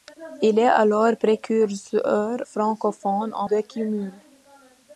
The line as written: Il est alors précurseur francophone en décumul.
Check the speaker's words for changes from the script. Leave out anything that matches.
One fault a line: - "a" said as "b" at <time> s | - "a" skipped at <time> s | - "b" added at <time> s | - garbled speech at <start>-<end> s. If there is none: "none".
none